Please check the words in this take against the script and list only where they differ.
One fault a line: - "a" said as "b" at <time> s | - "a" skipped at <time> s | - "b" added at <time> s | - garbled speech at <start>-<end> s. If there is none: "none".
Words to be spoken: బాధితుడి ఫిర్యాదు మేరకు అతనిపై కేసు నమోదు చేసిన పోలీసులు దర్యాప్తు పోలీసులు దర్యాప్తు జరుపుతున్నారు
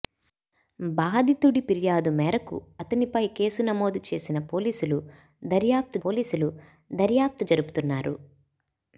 none